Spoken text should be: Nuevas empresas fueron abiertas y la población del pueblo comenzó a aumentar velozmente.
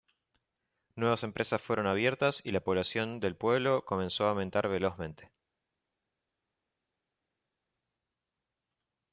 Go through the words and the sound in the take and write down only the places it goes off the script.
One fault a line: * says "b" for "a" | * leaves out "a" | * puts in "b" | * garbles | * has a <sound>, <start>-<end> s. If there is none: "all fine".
all fine